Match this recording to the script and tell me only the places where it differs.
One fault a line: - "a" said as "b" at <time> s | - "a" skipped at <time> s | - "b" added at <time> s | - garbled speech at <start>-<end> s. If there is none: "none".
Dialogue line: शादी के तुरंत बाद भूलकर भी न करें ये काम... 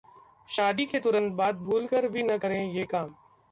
none